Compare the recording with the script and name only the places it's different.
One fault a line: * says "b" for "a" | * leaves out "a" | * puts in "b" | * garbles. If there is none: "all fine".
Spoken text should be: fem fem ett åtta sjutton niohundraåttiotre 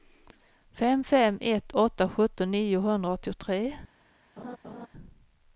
all fine